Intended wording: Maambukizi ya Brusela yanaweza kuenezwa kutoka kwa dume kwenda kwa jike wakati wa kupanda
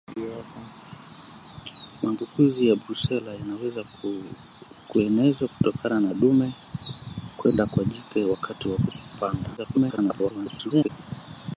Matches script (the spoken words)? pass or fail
fail